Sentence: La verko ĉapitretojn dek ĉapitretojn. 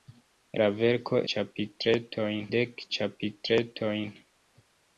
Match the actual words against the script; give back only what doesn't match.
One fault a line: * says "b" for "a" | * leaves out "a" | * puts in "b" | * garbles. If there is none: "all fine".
all fine